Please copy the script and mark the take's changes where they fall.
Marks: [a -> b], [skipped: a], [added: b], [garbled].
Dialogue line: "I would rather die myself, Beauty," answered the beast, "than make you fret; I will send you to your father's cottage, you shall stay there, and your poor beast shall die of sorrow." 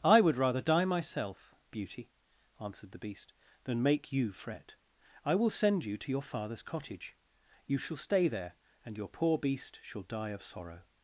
"I would rather die myself, Beauty," answered the beast, "than make you fret; I will send you to your father's cottage, you shall stay there, and your poor beast shall die of sorrow."